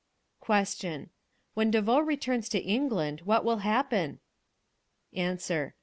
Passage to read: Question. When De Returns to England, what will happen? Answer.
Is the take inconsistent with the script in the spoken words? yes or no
yes